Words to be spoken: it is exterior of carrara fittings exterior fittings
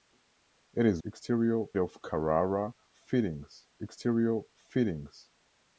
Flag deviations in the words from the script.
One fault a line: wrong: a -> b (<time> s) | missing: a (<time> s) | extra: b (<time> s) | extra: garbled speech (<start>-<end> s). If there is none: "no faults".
no faults